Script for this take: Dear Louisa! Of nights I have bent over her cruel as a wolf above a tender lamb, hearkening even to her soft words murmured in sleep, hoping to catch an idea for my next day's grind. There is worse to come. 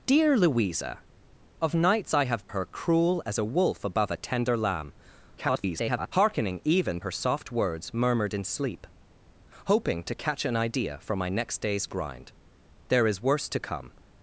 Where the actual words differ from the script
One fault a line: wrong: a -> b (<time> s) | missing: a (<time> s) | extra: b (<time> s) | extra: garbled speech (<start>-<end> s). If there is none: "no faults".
missing: bent over (2.5 s)
extra: garbled speech (5.4-6.1 s)
missing: to (7.0 s)